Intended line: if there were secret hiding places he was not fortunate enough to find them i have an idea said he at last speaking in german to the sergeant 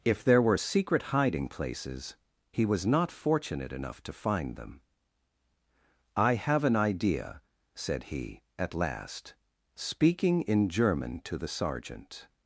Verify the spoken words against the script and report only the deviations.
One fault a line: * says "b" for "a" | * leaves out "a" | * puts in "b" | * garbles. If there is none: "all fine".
all fine